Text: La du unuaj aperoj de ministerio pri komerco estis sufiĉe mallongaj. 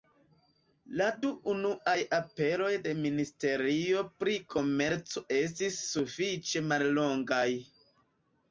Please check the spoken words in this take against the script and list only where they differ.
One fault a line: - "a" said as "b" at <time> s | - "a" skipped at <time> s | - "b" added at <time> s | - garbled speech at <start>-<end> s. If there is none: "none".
none